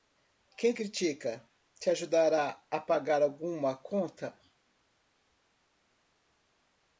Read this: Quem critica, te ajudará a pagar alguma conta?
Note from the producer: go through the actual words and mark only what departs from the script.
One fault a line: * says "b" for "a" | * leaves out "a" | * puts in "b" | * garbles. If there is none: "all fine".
all fine